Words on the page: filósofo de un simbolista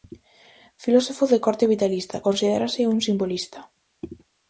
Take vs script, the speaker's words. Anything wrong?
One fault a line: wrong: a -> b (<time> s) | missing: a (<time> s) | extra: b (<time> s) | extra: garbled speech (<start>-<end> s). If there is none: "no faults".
extra: corte vitalista considérase (1.4 s)